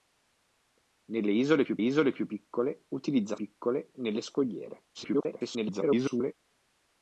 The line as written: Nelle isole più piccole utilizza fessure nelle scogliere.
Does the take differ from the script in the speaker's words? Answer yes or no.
yes